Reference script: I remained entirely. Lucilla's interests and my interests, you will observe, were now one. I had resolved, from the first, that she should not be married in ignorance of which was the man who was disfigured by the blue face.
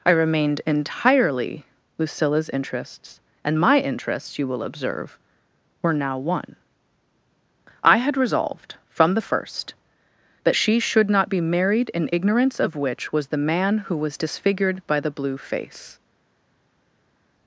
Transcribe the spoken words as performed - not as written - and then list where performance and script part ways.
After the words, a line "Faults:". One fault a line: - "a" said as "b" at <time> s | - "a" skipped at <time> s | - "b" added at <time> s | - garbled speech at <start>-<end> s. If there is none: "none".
I remained entirely. Lucilla's interests and my interests, you will observe, were now one. I had resolved, from the first, that she should not be married in ignorance of which was the man who was disfigured by the blue face.
Faults:
none